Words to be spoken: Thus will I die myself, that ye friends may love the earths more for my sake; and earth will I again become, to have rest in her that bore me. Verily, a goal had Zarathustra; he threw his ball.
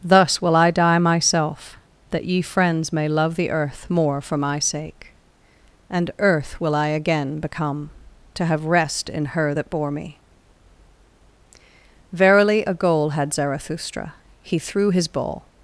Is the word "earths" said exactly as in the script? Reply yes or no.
no